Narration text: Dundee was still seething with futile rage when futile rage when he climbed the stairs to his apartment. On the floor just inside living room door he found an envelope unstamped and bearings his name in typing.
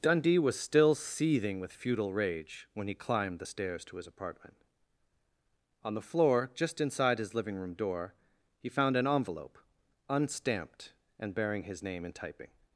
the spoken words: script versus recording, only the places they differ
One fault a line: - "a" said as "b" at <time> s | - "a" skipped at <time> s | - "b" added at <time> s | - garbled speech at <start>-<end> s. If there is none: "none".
- "futile rage when" skipped at 2.9 s
- "his" added at 7.2 s
- "bearings" said as "bearing" at 11.3 s